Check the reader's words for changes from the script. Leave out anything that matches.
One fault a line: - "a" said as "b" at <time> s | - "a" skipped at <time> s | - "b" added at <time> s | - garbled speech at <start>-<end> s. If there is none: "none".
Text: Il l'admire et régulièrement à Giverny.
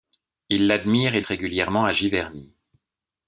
none